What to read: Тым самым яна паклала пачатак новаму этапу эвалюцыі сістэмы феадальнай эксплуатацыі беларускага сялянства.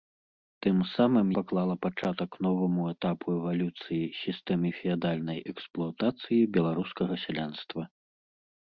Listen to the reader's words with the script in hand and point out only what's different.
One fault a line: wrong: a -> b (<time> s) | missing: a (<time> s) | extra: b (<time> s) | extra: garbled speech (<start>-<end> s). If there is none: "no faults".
missing: яна (1.3 s)